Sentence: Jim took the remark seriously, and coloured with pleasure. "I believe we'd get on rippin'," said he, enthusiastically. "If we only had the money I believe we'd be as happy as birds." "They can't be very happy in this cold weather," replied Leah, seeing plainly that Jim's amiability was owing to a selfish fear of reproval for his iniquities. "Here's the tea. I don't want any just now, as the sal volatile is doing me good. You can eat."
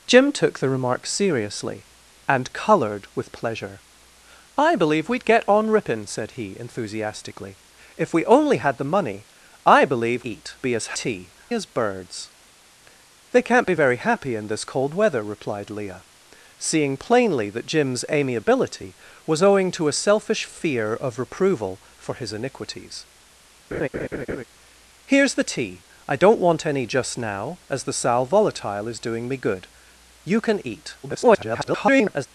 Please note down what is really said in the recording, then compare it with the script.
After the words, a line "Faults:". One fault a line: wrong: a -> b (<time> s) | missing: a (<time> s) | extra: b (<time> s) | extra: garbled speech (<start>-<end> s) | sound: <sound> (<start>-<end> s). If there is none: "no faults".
Jim took the remark seriously, and coloured with pleasure. "I believe we'd get on rippin'," said he, enthusiastically. "If we only had the money I believe eat be as tea as birds." "They can't be very happy in this cold weather," replied Leah, seeing plainly that Jim's amiability was owing to a selfish fear of reproval for his iniquities. "Here's the tea. I don't want any just now, as the sal volatile is doing me good. You can eat." [garbled]
Faults:
wrong: we'd -> eat (10.2 s)
wrong: happy -> tea (10.9 s)
sound: laugh (23.7-24.4 s)
extra: garbled speech (31.0-32.3 s)